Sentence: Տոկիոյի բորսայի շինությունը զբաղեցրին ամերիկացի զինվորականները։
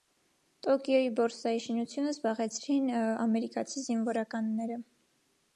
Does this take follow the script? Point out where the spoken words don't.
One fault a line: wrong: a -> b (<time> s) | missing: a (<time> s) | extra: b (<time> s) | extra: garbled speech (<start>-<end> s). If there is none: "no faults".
no faults